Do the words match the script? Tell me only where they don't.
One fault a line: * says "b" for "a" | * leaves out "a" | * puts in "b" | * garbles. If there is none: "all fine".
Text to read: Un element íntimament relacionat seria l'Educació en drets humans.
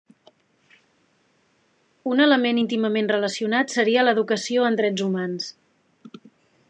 all fine